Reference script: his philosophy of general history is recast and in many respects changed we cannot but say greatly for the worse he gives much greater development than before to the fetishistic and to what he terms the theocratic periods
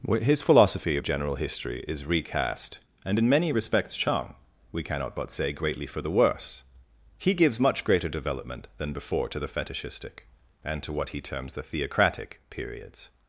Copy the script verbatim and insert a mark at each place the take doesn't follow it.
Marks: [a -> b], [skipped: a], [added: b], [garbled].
his philosophy of general history is recast and in many respects [changed -> chang] we cannot but say greatly for the worse he gives much greater development than before to the fetishistic and to what he terms the theocratic periods